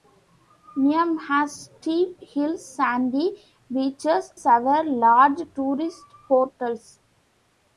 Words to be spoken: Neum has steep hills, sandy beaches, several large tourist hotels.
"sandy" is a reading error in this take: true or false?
false